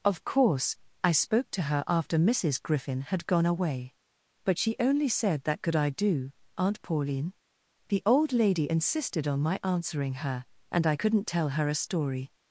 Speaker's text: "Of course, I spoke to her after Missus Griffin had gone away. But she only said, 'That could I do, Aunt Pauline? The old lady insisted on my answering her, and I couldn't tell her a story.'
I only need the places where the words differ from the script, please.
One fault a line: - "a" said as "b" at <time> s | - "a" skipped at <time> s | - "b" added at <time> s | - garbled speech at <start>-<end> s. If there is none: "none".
none